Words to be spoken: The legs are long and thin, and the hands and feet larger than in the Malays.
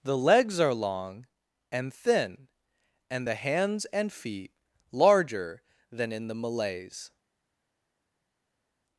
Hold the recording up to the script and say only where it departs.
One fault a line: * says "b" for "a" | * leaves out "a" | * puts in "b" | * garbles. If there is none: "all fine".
all fine